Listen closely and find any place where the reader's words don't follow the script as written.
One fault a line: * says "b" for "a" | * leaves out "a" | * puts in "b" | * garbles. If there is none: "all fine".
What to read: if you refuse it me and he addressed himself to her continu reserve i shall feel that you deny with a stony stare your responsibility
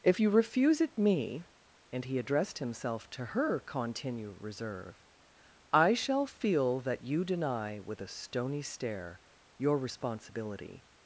all fine